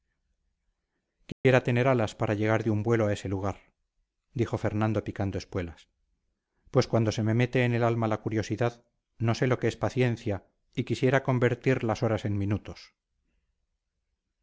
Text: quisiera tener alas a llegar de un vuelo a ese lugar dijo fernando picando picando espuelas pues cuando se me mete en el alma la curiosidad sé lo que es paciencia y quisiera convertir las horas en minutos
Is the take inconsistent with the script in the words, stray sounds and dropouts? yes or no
yes